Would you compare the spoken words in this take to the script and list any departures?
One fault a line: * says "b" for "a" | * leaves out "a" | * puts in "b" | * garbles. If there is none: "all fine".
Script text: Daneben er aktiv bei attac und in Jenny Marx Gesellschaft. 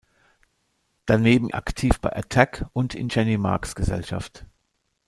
all fine